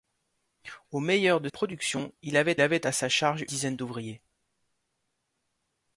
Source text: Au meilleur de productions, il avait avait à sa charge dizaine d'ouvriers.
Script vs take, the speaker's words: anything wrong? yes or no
no